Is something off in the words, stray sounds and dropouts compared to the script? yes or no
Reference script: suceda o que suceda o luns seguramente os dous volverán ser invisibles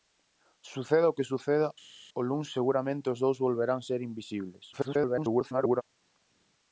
yes